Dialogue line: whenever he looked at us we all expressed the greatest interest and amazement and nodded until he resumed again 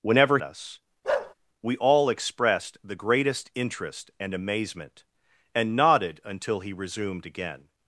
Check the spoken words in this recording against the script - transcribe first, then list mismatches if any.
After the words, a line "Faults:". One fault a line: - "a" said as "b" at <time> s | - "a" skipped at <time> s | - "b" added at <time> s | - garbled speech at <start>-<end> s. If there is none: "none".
whenever us we all expressed the greatest interest and amazement and nodded until he resumed again
Faults:
- "he looked at" skipped at 0.4 s